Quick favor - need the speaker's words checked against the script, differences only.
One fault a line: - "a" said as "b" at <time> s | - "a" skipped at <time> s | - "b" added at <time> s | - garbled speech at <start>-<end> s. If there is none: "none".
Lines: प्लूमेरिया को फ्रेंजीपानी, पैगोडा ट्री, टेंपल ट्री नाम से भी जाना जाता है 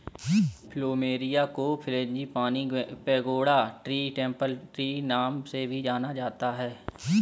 none